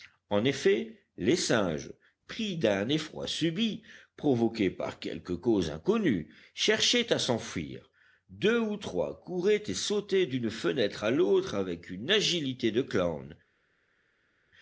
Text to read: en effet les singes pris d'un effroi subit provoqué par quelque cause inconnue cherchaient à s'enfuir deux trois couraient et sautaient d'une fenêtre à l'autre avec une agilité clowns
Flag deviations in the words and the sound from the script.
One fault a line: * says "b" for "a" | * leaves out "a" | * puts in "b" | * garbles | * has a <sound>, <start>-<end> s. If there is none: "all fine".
* puts in "ou"
* puts in "de"